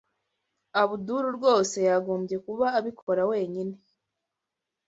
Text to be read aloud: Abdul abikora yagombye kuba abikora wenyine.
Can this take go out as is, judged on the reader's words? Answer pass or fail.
fail